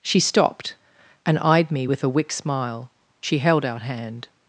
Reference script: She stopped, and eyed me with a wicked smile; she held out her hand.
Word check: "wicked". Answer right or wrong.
wrong